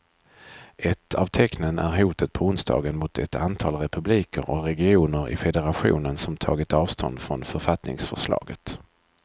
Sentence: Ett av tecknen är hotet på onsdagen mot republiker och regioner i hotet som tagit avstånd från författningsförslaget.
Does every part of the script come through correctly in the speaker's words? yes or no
no